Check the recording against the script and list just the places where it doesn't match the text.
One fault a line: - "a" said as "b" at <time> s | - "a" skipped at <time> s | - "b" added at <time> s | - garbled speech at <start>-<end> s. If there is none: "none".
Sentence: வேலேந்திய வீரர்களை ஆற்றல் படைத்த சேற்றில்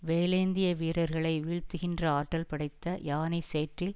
- "வீழ்த்துகின்ற" added at 1.4 s
- "யானை" added at 3.0 s